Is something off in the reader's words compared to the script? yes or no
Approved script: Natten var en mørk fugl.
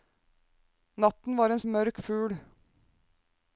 no